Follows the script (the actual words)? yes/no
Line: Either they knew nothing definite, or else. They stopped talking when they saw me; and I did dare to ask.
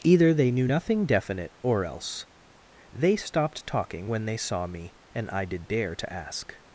yes